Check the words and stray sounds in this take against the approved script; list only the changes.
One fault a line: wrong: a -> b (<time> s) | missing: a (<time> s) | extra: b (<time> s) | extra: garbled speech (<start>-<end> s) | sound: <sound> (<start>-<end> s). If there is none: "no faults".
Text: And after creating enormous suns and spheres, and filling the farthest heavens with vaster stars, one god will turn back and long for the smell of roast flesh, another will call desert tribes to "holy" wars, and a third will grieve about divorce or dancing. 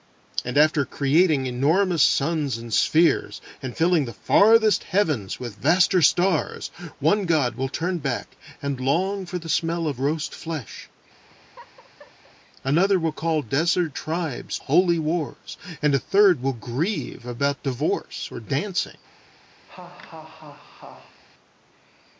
sound: laugh (11.3-12.4 s)
missing: to (14.6 s)
sound: laugh (19.7-21.2 s)